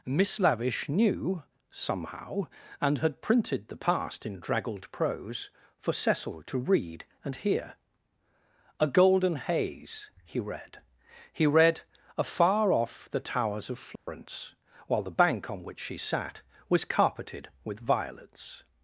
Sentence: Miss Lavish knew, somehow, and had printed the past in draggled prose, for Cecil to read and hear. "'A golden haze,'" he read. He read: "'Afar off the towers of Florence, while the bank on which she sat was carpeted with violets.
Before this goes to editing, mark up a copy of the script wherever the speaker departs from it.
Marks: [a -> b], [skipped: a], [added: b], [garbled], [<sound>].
Miss Lavish knew, somehow, and had printed the past in draggled prose, for Cecil to read and hear. "'A golden haze,'" he read. He read: "'Afar off the towers of Florence, [dropout] while the bank on which she sat was carpeted with violets.